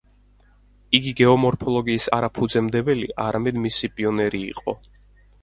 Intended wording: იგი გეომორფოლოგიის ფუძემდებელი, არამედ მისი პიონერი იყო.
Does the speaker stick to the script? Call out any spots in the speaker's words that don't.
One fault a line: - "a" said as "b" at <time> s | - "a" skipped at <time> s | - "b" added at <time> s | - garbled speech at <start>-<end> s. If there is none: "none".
- "არა" added at 2.2 s